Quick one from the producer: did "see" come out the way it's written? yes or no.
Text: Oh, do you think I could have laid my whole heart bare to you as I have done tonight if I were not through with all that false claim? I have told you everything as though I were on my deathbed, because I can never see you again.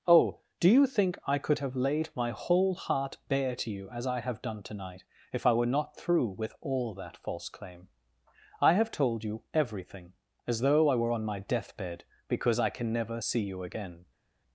yes